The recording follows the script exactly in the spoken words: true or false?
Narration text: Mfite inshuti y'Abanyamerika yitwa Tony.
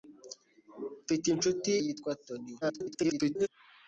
false